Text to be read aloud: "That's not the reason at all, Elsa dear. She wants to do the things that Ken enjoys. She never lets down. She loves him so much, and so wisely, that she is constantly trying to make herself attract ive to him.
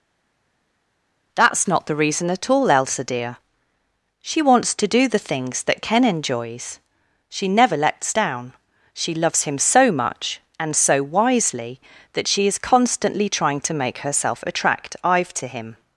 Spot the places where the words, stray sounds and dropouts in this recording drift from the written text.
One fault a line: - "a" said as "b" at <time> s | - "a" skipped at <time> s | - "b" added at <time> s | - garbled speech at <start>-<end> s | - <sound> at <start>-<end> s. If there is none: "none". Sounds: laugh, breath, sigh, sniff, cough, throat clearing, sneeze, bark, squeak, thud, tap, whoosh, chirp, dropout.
none